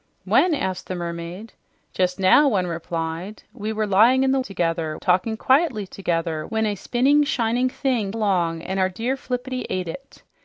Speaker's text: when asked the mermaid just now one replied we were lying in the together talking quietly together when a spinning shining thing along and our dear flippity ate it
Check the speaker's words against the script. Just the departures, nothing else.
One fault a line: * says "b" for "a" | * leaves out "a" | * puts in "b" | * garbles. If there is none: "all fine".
all fine